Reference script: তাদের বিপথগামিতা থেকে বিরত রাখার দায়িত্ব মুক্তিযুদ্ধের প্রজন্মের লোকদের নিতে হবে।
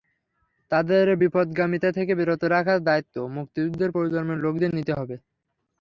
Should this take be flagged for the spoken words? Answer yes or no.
no